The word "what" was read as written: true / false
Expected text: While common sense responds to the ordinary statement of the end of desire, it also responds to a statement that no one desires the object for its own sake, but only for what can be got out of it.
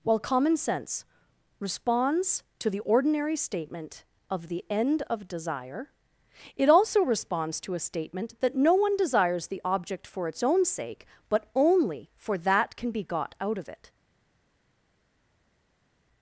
false